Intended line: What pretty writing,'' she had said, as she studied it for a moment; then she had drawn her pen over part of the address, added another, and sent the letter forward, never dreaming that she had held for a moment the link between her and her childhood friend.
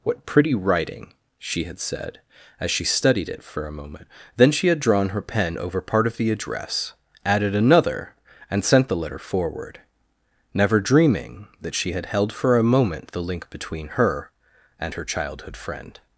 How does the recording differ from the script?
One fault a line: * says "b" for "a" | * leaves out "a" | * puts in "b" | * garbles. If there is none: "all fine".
all fine